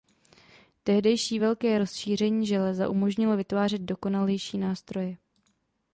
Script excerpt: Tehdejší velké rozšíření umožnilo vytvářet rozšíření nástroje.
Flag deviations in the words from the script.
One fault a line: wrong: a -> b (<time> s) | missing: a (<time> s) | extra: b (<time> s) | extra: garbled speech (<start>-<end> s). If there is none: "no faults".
extra: železa (2.5 s)
wrong: rozšíření -> dokonalejší (3.8 s)